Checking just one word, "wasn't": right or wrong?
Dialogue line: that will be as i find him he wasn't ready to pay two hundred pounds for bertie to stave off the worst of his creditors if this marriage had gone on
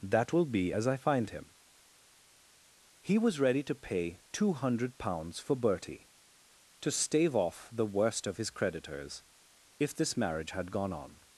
wrong